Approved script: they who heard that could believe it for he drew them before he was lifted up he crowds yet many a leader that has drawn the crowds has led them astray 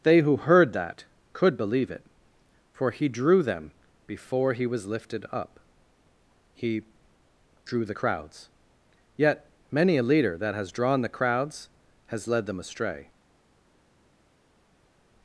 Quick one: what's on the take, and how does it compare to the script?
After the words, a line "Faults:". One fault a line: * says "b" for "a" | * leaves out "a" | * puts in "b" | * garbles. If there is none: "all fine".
they who heard that could believe it for he drew them before he was lifted up he drew the crowds yet many a leader that has drawn the crowds has led them astray
Faults:
* puts in "drew the"